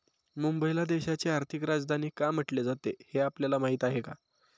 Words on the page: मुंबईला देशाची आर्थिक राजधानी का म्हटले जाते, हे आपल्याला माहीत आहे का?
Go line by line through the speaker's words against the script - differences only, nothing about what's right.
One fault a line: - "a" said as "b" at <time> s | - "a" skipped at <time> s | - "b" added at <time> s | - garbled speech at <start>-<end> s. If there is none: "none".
none